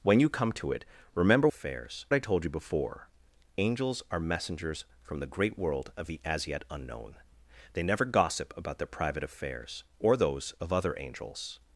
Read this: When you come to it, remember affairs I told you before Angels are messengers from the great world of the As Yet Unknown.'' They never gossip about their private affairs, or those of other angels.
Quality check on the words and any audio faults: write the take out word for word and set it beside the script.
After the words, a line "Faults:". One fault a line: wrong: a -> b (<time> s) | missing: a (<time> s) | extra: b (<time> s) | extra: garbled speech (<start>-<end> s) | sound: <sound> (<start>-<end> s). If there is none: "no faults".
When you come to it, remember affairs I told you before Angels are messengers from the great world of the As Yet Unknown.'' They never gossip about their private affairs, or those of other angels.
Faults:
no faults